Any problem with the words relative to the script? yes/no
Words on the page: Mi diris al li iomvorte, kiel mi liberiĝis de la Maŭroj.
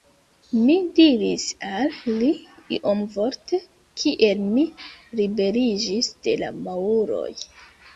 no